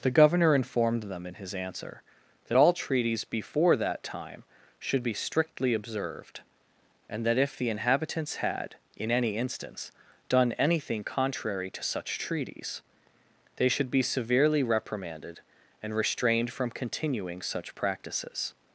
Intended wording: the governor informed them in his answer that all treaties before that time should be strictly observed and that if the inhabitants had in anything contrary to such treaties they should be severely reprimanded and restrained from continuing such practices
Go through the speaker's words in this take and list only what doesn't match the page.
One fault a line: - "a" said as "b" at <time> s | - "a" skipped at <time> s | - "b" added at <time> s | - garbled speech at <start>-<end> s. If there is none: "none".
- "any instance done" added at 9.1 s